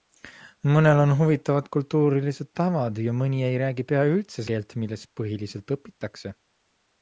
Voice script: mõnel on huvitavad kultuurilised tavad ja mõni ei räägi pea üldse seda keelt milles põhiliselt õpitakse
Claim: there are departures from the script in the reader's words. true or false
true